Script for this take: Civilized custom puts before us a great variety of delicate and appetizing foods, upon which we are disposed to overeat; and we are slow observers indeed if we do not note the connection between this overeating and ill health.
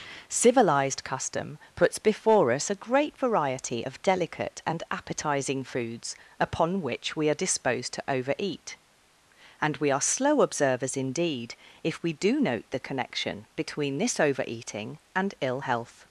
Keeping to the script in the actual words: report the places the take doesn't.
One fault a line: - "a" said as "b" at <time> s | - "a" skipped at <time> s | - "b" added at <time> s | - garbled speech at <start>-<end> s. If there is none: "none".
- "not" skipped at 12.4 s